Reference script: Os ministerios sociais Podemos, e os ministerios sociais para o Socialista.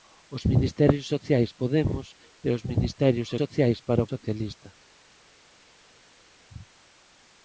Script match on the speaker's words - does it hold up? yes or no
yes